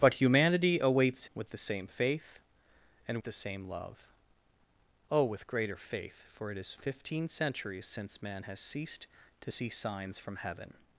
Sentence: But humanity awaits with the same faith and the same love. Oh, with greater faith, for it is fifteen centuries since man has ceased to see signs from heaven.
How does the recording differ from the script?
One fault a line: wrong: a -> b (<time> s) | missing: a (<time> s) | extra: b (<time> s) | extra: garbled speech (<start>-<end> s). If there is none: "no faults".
no faults